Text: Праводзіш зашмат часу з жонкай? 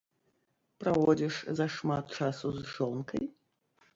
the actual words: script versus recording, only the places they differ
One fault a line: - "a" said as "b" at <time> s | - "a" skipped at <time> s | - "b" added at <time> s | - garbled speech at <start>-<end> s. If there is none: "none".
none